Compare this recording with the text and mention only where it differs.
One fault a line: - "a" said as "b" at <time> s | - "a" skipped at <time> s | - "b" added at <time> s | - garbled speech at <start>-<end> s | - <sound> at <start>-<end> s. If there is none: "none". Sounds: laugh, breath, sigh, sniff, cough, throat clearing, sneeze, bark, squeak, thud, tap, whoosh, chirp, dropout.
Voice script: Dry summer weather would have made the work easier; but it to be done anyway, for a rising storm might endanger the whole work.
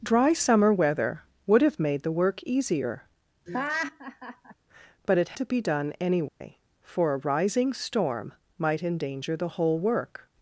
- laugh at 3.5-4.5 s
- dropout at 6.3-6.4 s